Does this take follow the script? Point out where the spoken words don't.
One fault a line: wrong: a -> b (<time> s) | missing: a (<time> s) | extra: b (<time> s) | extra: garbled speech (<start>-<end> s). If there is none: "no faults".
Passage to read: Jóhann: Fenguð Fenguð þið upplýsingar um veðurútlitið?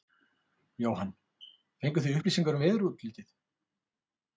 missing: Fenguð (2.1 s)